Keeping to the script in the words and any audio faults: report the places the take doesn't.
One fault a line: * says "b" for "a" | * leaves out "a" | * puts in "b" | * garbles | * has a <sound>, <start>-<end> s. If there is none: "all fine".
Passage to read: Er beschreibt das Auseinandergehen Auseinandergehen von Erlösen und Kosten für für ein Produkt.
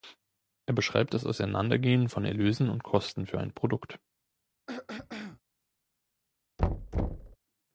* leaves out "Auseinandergehen"
* leaves out "für"
* has a throat clearing, 4.7-5.4 s
* has a thud, 6.6-7.4 s